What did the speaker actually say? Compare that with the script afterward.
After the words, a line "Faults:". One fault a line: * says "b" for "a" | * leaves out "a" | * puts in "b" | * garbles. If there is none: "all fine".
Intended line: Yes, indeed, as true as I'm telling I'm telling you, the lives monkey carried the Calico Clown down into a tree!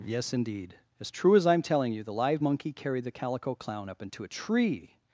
Yes, indeed, as true as I'm telling you, the live monkey carried the Calico Clown up into a tree!
Faults:
* leaves out "I'm telling"
* says "live" for "lives"
* says "up" for "down"